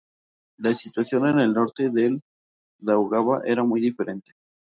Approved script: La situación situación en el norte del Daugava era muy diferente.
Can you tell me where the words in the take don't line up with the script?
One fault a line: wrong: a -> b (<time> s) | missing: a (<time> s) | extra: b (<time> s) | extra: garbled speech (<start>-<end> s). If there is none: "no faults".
missing: situación (1.3 s)